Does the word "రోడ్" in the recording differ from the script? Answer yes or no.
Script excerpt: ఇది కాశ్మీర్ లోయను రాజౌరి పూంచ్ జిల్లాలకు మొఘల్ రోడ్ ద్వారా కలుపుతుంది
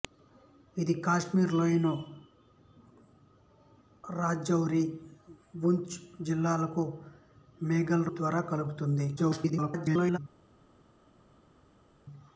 yes